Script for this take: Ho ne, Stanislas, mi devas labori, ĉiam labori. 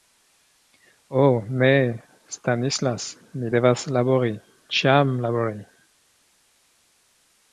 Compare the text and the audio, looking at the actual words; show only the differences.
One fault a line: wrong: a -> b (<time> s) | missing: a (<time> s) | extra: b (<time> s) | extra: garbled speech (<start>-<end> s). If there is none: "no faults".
no faults